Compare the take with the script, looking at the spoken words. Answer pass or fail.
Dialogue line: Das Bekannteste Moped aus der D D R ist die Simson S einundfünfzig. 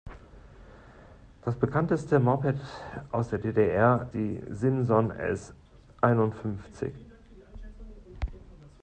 fail